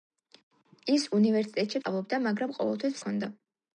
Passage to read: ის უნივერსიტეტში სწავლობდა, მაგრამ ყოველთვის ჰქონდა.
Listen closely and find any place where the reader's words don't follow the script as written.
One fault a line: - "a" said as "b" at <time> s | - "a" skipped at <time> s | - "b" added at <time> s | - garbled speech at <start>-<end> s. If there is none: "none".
none